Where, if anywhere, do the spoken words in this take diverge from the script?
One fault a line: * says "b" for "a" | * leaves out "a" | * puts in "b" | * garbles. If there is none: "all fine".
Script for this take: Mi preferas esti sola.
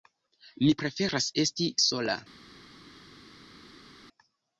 all fine